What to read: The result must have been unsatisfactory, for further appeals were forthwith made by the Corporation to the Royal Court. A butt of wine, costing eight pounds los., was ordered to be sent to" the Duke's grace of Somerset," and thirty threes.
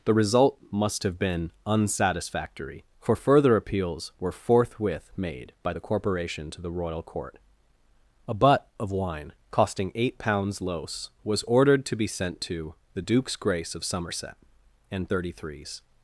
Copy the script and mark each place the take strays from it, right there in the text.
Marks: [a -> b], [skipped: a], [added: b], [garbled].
The result must have been unsatisfactory, for further appeals were forthwith made by the Corporation to the Royal Court. A butt of wine, costing eight pounds los., was ordered to be sent to" the Duke's grace of Somerset," and thirty threes.